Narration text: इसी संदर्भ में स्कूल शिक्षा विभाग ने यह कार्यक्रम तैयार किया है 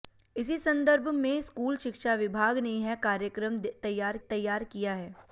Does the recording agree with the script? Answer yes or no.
no